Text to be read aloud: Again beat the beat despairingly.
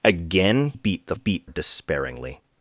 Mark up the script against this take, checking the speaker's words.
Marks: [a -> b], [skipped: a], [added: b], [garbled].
Again beat the beat despairingly.